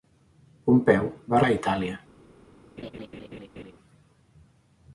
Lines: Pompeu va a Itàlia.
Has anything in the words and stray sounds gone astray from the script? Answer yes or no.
yes